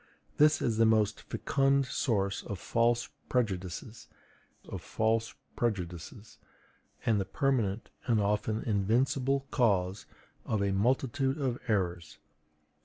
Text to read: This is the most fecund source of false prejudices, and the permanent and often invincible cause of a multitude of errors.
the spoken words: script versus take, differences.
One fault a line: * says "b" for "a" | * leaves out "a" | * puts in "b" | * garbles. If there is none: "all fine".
* puts in "of false prejudices"